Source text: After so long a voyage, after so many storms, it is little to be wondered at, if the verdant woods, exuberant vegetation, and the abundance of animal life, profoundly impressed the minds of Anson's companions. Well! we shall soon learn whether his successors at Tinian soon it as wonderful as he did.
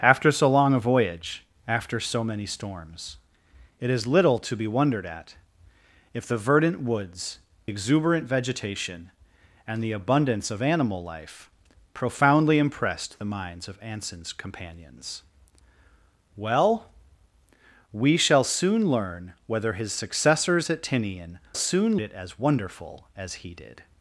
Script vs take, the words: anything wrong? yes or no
no